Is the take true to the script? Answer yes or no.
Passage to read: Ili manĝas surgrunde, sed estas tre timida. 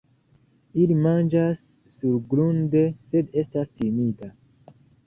no